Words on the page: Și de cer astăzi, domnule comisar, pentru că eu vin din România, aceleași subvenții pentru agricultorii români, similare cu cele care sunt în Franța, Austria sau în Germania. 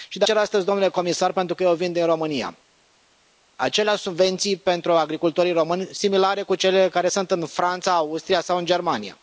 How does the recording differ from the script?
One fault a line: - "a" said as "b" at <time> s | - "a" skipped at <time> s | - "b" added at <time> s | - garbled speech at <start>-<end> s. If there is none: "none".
none